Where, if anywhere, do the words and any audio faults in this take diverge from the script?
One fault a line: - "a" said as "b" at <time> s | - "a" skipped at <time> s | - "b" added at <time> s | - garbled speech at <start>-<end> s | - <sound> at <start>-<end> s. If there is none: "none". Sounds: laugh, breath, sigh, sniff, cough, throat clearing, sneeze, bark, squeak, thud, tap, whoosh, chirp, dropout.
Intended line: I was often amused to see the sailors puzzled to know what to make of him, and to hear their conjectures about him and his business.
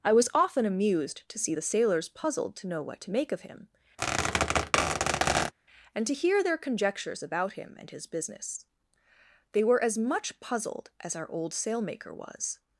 - squeak at 4.0-5.5 s
- "They were as much puzzled as our old sailmaker was" added at 9.5 s